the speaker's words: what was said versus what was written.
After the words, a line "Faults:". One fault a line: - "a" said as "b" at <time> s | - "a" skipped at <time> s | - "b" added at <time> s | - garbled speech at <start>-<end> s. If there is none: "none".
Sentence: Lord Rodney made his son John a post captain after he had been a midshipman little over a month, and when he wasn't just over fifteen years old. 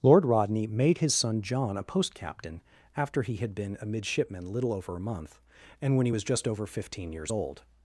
Lord Rodney made his son John a post captain after he had been a midshipman little over a month, and when he was just over fifteen years old.
Faults:
- "wasn't" said as "was" at 6.1 s